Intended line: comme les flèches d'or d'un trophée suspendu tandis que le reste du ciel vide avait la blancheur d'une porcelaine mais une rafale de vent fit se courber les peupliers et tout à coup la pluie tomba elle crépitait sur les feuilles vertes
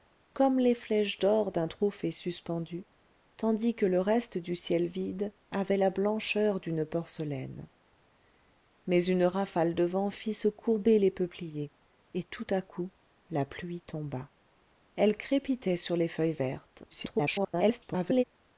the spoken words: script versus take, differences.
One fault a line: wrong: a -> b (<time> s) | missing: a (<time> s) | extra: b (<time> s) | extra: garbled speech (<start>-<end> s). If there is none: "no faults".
extra: garbled speech (16.9-18.2 s)